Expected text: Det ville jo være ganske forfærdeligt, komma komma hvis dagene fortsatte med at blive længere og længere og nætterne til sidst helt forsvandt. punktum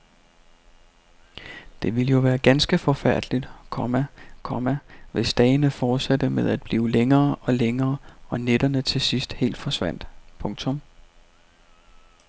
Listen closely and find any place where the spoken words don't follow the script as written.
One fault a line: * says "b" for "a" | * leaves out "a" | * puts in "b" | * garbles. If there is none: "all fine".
all fine